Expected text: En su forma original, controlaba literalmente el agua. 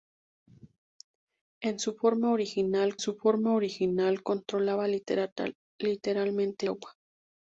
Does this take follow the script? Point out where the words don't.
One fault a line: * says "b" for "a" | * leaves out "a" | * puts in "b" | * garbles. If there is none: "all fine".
* puts in "su forma original"
* leaves out "el"